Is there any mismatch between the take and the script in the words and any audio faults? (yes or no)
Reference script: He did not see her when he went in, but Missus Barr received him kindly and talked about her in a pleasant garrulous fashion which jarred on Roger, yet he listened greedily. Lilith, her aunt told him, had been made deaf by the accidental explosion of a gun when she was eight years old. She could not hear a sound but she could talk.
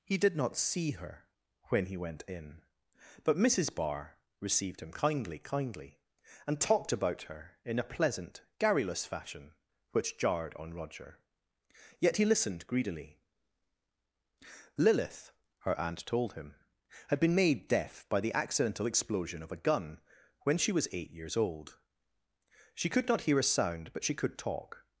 yes